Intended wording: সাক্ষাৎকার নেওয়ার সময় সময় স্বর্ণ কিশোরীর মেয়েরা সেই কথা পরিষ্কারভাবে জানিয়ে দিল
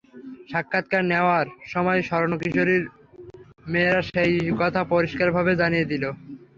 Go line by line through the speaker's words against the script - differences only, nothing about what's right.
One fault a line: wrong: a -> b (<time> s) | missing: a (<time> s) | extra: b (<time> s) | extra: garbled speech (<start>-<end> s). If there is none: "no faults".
missing: সময় (2.0 s)